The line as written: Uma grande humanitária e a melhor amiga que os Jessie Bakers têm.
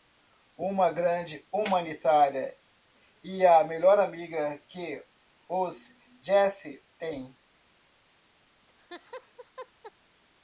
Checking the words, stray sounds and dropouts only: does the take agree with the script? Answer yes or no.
no